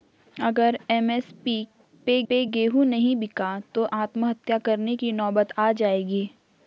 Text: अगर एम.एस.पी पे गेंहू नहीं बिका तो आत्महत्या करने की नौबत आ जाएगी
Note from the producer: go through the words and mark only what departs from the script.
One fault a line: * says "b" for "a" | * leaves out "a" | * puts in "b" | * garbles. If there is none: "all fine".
* puts in "पे"